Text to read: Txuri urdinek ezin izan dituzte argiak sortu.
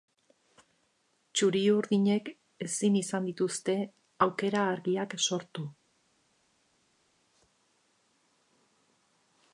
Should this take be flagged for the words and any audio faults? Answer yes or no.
yes